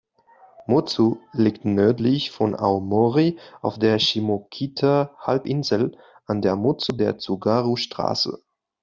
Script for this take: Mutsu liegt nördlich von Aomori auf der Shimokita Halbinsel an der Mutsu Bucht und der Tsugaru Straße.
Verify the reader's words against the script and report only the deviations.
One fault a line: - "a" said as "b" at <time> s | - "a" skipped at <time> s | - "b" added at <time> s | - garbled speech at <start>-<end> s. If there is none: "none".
- "Bucht und" skipped at 7.0 s